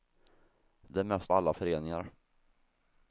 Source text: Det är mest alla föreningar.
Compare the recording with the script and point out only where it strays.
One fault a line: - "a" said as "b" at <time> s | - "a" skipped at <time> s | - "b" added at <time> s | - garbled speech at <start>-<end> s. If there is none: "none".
none